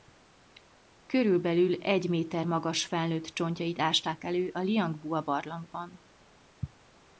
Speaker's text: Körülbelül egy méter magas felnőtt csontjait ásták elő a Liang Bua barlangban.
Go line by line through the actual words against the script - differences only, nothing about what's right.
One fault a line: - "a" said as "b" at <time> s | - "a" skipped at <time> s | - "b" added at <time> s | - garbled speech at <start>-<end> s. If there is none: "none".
none